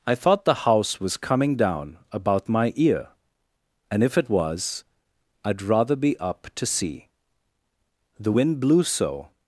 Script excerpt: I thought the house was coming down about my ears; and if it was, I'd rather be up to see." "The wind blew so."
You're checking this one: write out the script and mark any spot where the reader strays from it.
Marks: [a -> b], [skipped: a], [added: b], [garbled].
I thought the house was coming down about my [ears; -> ear] and if it was, I'd rather be up to see." "The wind blew so."